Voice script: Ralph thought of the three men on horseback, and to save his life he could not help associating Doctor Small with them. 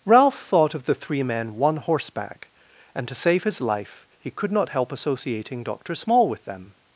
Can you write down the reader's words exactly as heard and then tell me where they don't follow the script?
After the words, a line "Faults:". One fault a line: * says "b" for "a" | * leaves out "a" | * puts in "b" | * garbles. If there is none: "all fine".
Ralph thought of the three men one horseback, and to save his life he could not help associating Doctor Small with them.
Faults:
* says "one" for "on"